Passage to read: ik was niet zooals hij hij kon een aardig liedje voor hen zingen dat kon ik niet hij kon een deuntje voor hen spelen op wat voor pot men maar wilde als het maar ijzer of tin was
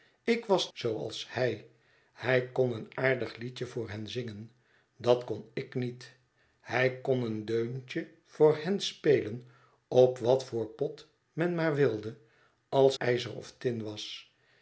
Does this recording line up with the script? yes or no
no